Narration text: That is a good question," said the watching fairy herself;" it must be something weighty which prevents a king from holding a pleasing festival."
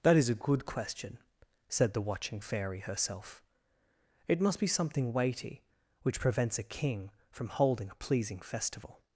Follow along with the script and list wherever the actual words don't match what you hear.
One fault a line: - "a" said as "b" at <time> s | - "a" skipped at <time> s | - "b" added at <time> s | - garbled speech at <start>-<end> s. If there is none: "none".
none